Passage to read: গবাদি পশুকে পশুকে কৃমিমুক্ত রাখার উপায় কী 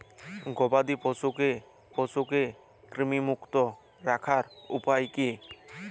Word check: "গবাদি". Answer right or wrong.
right